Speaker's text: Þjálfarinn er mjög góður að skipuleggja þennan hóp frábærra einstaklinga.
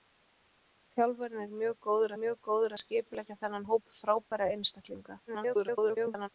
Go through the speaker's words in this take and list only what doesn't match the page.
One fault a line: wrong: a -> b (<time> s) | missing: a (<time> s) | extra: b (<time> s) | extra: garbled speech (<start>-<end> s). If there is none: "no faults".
extra: mjög góður (2.2 s)
extra: garbled speech (5.3-6.3 s)